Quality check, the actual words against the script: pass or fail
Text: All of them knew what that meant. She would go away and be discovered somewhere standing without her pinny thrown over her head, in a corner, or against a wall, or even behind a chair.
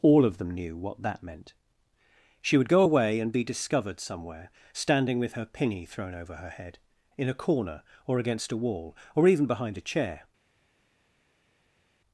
fail